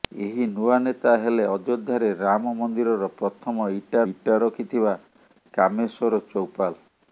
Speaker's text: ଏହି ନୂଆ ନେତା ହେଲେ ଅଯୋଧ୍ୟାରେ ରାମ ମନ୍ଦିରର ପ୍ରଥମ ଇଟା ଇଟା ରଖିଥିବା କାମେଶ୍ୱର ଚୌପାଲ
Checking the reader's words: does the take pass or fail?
pass